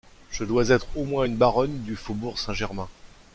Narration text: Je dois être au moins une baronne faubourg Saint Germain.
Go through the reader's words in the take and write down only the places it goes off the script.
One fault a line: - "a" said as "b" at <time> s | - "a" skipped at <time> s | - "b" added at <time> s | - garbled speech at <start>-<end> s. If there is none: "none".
- "du" added at 1.8 s